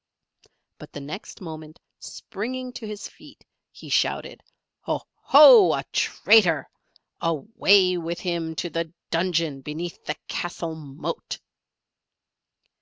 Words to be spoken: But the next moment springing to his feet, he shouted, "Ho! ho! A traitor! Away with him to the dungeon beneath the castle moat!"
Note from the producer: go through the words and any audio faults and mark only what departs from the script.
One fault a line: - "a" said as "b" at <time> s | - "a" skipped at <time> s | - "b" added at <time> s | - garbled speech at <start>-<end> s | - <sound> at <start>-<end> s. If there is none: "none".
none